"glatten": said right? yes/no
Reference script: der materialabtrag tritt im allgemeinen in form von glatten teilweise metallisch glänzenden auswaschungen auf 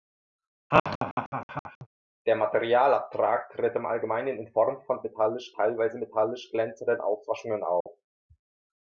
no